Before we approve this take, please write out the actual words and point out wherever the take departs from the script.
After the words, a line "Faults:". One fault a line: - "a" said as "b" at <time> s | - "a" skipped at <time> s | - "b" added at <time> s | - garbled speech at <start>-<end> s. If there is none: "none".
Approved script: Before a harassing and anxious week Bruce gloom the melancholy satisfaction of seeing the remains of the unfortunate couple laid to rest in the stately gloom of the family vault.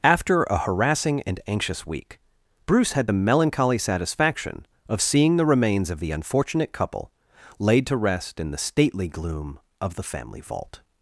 After a harassing and anxious week Bruce had the melancholy satisfaction of seeing the remains of the unfortunate couple laid to rest in the stately gloom of the family vault.
Faults:
- "Before" said as "After" at 0.0 s
- "gloom" said as "had" at 2.9 s